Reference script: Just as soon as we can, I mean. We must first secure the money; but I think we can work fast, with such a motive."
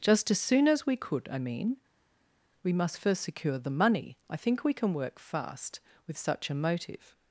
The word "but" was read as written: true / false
false